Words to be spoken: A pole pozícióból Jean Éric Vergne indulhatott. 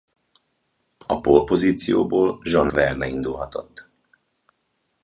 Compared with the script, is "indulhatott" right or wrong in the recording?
right